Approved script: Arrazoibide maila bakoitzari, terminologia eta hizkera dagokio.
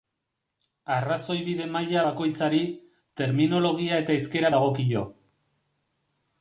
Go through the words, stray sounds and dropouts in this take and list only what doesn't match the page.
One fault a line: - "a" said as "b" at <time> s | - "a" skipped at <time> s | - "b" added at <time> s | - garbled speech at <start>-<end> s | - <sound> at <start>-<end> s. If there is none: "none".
none